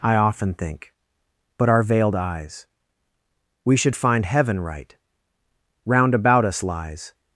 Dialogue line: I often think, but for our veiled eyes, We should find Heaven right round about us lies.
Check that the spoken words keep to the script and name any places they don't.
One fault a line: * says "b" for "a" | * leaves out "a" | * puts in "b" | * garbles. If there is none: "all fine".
* leaves out "for"